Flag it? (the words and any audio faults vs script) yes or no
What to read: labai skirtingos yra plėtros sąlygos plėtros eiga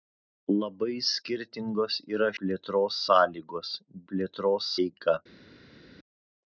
no